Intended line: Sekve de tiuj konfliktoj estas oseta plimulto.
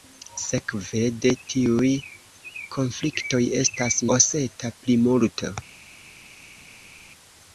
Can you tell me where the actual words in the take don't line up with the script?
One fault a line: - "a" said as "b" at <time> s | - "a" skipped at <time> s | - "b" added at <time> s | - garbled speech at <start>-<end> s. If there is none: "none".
none